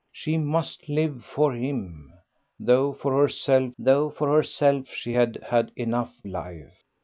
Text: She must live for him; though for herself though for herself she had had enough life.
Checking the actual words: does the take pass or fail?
pass